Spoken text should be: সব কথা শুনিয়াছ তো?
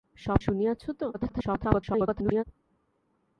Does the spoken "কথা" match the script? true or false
false